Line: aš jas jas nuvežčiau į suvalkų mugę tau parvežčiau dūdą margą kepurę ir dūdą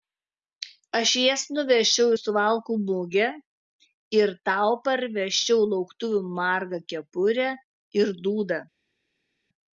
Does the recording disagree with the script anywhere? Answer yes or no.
yes